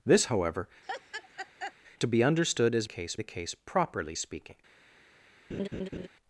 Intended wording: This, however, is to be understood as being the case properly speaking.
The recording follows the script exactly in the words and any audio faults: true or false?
false